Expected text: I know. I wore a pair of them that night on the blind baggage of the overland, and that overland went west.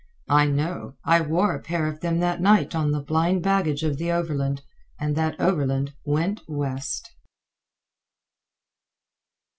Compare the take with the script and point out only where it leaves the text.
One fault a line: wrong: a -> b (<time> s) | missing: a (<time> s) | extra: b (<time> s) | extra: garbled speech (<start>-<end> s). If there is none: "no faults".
no faults